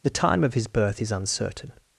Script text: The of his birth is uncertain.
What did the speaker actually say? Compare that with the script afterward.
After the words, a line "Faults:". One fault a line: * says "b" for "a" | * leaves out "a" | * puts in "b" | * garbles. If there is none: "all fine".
The time of his birth is uncertain.
Faults:
* puts in "time"